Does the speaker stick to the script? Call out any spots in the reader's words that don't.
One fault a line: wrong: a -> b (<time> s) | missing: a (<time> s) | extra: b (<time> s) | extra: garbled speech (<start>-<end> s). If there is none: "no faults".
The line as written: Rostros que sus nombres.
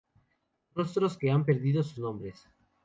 extra: han perdido (1.3 s)